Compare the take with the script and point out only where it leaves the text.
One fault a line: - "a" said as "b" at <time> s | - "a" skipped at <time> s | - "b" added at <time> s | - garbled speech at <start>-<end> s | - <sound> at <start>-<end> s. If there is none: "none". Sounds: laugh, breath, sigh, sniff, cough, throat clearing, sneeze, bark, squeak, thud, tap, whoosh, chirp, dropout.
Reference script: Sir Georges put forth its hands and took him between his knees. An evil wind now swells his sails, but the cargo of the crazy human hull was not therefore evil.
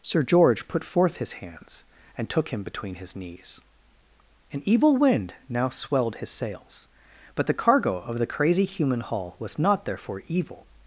- "Georges" said as "George" at 0.2 s
- "its" said as "his" at 1.2 s
- "swells" said as "swelled" at 5.7 s